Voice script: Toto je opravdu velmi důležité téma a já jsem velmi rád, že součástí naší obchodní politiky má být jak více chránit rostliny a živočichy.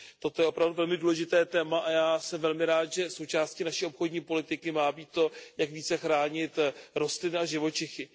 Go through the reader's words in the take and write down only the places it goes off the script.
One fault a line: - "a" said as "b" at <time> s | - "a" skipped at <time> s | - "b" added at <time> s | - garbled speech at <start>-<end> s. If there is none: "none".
- "to" added at 5.1 s